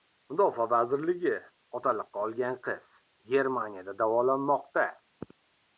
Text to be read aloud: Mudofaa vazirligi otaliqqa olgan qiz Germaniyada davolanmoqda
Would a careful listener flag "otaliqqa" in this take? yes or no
no